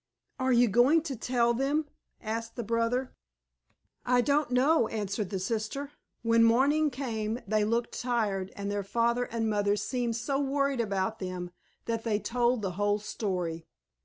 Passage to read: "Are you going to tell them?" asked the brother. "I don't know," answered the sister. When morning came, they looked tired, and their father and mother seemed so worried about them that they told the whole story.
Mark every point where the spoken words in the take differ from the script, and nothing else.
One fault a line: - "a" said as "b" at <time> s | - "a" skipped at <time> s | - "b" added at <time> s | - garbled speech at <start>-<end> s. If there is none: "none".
none